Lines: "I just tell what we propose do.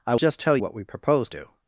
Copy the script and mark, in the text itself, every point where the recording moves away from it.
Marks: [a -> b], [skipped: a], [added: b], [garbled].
"I just tell what we propose do.